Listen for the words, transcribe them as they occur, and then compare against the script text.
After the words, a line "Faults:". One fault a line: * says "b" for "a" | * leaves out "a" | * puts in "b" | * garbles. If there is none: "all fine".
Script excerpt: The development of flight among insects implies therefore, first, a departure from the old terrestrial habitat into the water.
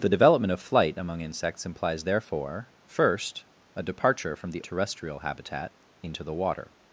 The development of flight among insects implies therefore, first, a departure from the terrestrial habitat into the water.
Faults:
* leaves out "old"